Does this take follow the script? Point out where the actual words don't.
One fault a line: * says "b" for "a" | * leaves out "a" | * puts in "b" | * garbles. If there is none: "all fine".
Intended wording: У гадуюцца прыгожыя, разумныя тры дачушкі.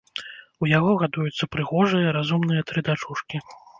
* puts in "яго"